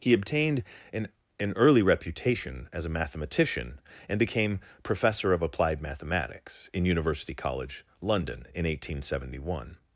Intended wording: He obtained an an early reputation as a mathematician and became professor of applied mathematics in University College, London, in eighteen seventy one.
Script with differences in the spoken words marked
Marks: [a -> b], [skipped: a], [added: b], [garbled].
He obtained an an early reputation as a mathematician and became professor of applied mathematics in University College, London, in eighteen seventy one.